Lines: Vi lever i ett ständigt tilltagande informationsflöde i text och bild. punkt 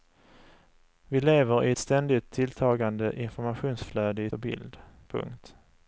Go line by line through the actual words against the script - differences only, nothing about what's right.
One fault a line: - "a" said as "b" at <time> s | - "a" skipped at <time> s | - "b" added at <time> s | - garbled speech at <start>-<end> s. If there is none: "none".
- "text" skipped at 4.3 s